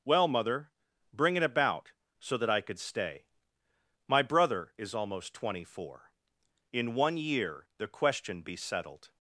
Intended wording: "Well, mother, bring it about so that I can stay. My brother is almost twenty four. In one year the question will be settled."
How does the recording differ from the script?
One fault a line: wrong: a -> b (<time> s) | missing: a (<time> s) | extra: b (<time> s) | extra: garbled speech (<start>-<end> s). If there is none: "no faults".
wrong: can -> could (2.6 s)
missing: will (8.4 s)